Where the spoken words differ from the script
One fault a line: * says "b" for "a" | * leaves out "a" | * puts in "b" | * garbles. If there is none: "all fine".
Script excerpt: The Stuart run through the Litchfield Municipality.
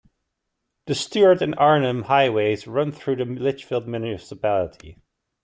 * puts in "and Arnhem Highways"